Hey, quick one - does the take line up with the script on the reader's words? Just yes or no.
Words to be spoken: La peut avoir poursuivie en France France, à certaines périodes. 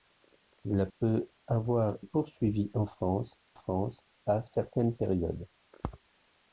yes